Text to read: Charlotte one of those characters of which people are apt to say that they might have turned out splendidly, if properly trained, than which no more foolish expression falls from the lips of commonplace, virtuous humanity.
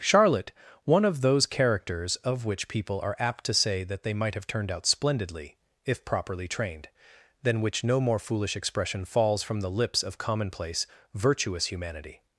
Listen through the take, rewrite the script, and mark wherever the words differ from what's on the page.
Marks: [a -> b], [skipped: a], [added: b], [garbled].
Charlotte one of those characters of which people are apt to say that they might have turned out splendidly, if properly trained, than which no more foolish expression falls from the lips of commonplace, virtuous humanity.